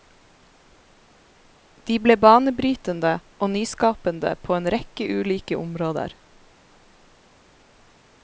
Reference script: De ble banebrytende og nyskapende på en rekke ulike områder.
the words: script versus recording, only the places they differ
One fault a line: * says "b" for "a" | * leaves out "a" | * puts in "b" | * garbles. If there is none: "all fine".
all fine